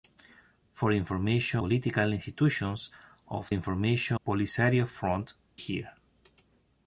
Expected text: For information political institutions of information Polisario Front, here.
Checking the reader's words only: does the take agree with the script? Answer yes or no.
yes